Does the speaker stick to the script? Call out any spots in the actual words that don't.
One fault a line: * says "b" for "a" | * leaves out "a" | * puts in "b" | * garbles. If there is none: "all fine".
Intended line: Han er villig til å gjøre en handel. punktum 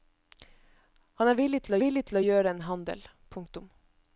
* puts in "villig til"